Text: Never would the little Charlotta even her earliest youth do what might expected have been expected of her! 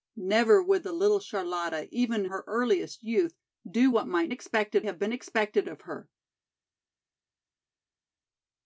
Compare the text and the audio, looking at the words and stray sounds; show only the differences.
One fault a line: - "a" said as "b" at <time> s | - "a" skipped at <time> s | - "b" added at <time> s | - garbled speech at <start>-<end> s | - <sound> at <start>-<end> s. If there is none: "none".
none